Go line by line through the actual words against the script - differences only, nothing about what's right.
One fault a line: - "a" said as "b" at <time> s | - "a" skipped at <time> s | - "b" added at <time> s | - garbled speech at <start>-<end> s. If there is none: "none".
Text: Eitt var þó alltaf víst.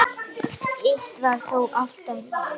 none